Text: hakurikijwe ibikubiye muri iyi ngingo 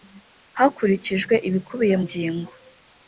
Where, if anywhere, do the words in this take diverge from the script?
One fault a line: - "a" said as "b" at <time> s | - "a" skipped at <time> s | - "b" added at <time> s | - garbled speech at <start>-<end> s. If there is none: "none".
- "muri iyi" skipped at 2.0 s